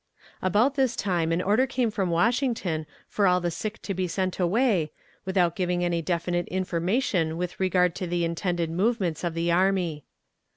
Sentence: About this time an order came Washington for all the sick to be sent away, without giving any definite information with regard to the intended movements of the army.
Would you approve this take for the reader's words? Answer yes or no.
no